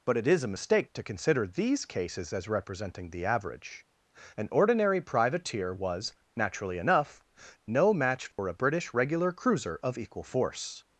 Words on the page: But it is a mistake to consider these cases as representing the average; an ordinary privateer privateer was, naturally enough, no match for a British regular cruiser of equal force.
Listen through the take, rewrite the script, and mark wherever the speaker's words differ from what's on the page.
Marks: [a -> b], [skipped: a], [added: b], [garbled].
But it is a mistake to consider these cases as representing the average; an ordinary privateer [skipped: privateer] was, naturally enough, no match for a British regular cruiser of equal force.